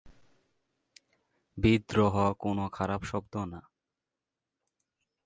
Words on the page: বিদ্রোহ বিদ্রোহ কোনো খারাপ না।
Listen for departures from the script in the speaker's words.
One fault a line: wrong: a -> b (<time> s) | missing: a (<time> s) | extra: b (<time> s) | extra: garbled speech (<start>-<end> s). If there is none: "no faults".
missing: বিদ্রোহ (2.1 s)
extra: শব্দ (3.0 s)